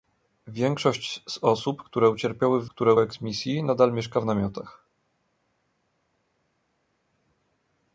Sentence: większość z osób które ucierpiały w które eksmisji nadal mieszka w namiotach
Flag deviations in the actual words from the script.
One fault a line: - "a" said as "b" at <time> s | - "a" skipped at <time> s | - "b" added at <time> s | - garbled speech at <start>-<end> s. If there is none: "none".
none